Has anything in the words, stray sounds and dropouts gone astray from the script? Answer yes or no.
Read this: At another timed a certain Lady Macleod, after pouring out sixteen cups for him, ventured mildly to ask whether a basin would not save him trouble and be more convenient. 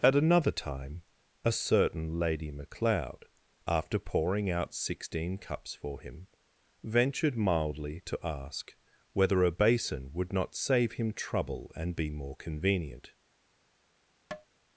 yes